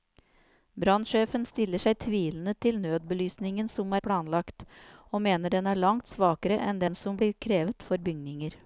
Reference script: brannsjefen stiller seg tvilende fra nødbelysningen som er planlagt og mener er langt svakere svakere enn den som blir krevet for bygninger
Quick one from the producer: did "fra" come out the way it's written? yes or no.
no